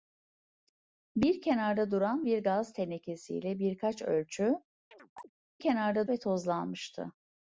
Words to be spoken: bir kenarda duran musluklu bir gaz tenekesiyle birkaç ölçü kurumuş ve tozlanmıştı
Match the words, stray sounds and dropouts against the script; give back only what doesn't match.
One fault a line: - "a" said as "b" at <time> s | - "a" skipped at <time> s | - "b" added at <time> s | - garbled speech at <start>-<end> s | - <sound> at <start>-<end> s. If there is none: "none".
- "musluklu" skipped at 2.3 s
- chirp at 4.9-5.3 s
- "kurumuş" said as "kenarda" at 5.6 s